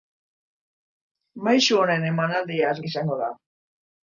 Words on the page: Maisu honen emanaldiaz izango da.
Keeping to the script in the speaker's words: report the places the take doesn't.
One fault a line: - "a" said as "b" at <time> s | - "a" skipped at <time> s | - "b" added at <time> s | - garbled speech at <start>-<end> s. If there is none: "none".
none